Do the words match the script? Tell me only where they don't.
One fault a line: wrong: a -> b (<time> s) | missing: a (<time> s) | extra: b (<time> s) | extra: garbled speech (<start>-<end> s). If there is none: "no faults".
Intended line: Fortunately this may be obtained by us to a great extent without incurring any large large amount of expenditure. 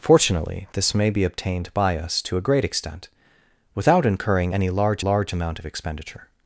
no faults